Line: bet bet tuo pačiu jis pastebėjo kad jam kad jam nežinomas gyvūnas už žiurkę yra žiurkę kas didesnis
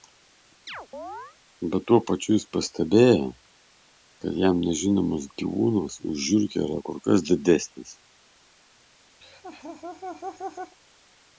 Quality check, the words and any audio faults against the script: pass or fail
fail